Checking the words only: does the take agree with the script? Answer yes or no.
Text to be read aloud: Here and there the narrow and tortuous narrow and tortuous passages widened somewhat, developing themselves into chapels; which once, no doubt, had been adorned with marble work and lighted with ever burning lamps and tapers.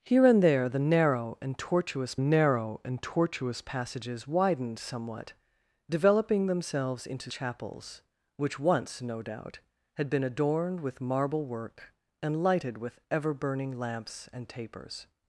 yes